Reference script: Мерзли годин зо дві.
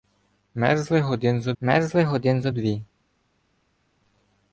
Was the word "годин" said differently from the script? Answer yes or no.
no